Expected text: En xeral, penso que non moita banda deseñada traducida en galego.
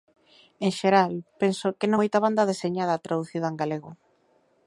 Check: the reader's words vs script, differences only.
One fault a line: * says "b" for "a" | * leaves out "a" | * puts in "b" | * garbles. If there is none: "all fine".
all fine